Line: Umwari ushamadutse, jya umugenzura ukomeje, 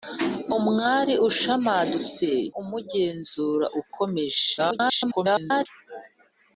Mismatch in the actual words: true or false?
true